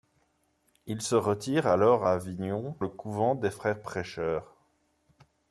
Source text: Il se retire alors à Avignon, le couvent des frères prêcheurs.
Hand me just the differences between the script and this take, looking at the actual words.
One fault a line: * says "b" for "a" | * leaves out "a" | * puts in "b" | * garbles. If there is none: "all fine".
all fine